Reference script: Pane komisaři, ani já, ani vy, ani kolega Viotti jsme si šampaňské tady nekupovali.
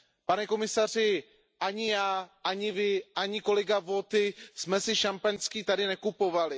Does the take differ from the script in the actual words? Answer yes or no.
no